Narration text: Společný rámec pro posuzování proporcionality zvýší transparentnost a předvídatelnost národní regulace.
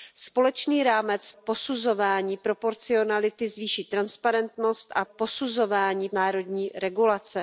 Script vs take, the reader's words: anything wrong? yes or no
yes